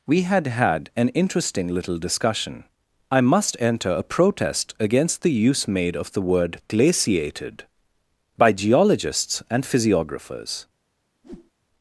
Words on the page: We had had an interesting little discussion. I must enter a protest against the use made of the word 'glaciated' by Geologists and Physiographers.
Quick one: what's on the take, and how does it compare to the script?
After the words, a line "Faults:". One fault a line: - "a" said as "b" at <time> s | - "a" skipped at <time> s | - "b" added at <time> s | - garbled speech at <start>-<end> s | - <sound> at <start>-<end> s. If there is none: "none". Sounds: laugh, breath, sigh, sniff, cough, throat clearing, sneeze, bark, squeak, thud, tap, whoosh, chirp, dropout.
We had had an interesting little discussion. I must enter a protest against the use made of the word 'glaciated' by Geologists and Physiographers.
Faults:
- whoosh at 11.2-11.5 s